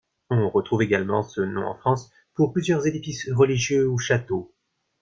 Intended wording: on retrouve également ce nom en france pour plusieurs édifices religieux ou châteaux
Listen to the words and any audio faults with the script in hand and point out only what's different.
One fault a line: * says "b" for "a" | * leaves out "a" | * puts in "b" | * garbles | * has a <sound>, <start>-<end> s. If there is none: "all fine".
all fine